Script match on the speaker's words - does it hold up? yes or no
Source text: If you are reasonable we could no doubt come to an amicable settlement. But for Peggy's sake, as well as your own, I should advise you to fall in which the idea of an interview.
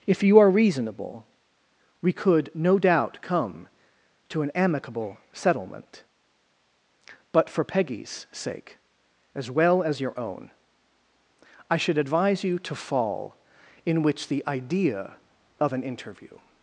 yes